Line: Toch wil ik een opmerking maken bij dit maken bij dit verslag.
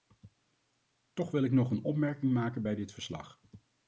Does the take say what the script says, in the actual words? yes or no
no